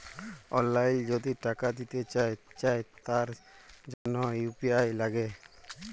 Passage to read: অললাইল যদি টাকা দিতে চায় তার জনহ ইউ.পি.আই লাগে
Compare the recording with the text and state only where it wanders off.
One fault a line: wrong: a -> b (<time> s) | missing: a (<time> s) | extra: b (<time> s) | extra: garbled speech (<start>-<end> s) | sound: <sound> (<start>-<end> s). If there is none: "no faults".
extra: চায় (2.6 s)
sound: dropout (3.9-4.1 s)